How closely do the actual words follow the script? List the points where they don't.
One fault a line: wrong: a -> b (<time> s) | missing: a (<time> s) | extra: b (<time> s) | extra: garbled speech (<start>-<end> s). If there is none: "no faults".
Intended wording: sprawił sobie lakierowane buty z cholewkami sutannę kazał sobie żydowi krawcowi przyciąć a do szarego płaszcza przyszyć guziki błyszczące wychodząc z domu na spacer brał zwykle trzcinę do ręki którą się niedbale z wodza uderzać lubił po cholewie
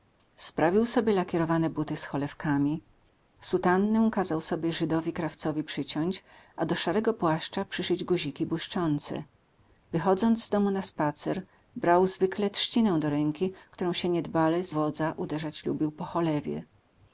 no faults